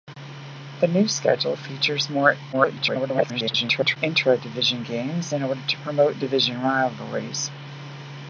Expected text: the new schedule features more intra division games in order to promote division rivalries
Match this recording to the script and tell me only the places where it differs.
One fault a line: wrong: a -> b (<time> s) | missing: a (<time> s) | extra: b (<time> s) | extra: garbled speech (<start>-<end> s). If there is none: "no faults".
extra: garbled speech (2.5-4.0 s)